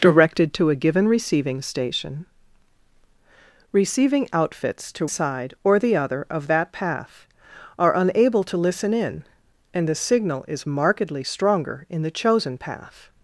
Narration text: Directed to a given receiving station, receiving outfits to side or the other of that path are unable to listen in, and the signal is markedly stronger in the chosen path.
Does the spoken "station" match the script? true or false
true